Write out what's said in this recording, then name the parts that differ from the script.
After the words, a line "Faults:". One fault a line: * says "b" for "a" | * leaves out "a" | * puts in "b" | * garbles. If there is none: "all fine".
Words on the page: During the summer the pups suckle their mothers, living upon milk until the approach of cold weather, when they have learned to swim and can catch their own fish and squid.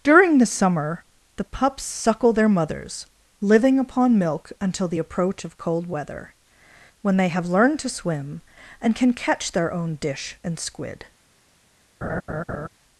During the summer the pups suckle their mothers, living upon milk until the approach of cold weather, when they have learned to swim and can catch their own dish and squid.
Faults:
* says "dish" for "fish"